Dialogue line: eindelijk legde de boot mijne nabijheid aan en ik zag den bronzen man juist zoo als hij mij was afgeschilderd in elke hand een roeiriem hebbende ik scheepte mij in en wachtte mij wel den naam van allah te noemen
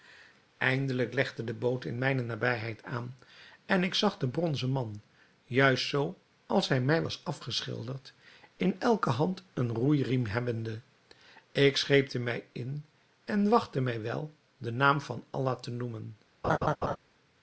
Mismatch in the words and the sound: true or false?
true